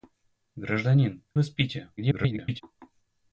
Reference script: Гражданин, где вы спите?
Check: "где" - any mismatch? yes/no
yes